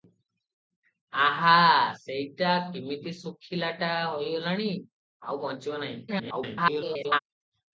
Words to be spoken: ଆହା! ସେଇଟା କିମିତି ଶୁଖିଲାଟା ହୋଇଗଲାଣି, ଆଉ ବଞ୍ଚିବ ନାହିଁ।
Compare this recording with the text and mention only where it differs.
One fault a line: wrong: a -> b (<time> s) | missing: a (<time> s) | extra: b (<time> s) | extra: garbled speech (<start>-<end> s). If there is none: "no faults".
extra: garbled speech (6.1-7.2 s)